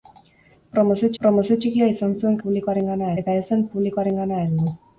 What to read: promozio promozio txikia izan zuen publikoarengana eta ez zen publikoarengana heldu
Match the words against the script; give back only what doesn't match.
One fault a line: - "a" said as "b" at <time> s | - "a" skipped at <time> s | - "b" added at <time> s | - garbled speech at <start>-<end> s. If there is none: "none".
none